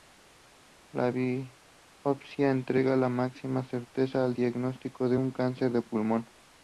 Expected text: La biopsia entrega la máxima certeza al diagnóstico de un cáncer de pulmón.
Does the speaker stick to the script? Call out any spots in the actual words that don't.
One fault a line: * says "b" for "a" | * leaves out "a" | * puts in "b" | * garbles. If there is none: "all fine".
all fine